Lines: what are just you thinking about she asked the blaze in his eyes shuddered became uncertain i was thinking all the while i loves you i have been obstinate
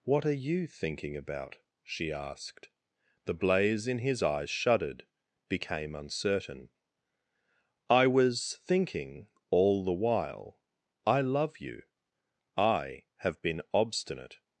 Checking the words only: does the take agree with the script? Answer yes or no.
no